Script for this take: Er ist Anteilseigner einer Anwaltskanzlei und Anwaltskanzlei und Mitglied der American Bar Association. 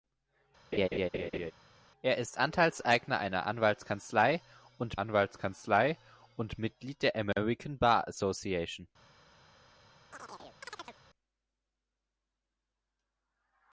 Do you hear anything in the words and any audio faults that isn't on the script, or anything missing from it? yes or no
yes